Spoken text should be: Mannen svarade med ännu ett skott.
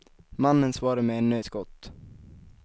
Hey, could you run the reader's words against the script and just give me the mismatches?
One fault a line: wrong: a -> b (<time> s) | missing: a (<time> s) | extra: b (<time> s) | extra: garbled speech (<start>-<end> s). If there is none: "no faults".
missing: ett (1.4 s)